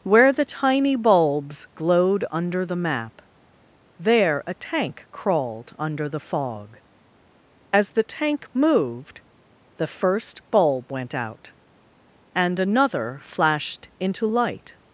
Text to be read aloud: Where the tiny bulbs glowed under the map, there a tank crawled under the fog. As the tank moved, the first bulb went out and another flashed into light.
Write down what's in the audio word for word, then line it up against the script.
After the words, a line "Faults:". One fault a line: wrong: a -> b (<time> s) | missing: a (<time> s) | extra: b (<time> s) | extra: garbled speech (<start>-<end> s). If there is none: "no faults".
Where the tiny bulbs glowed under the map, there a tank crawled under the fog. As the tank moved, the first bulb went out and another flashed into light.
Faults:
no faults